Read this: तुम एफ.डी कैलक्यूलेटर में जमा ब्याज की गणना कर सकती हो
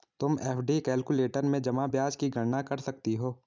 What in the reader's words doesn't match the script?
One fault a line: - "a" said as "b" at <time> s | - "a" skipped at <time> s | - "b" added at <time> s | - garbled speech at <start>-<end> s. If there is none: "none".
none